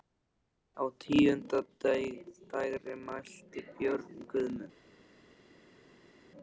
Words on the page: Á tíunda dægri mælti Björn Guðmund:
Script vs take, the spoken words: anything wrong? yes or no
no